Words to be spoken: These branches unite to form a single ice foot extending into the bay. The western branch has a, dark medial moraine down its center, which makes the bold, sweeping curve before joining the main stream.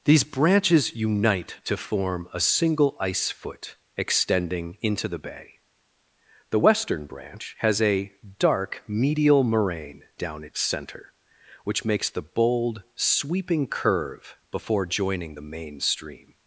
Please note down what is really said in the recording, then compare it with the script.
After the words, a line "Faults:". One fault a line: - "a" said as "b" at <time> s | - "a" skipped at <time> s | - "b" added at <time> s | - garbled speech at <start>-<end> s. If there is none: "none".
These branches unite to form a single ice foot extending into the bay. The western branch has a, dark medial moraine down its center, which makes the bold, sweeping curve before joining the main stream.
Faults:
none